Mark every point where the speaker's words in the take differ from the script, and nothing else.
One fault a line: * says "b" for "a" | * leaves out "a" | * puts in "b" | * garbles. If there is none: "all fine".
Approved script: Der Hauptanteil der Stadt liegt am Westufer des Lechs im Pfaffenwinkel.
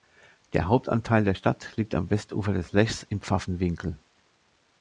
all fine